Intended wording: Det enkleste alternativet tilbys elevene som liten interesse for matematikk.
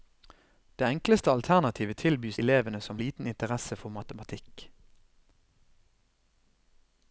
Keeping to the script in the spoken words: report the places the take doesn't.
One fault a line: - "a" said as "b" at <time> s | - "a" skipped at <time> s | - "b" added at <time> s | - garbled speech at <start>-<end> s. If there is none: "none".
none